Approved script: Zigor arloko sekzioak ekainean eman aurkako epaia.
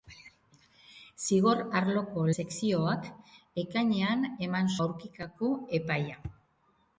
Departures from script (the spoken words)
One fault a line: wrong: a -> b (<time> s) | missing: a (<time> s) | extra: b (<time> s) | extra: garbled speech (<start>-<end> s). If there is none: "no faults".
no faults